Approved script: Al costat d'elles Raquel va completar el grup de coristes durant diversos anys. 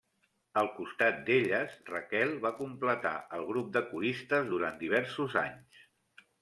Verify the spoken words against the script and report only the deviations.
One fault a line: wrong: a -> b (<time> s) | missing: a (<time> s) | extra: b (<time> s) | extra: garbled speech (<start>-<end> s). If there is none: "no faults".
no faults